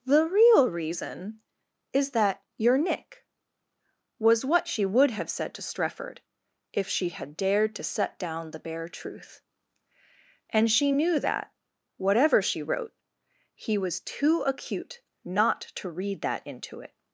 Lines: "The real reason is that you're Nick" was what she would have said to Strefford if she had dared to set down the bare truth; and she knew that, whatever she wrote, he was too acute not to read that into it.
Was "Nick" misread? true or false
false